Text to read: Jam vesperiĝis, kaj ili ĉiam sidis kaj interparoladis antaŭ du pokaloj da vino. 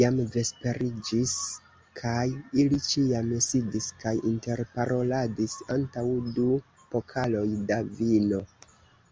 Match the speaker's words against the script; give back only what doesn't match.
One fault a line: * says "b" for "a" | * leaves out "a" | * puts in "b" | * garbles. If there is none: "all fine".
all fine